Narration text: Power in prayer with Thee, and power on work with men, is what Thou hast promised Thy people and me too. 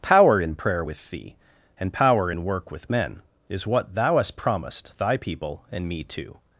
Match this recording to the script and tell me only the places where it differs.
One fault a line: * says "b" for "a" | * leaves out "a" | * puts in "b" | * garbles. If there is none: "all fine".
* says "in" for "on"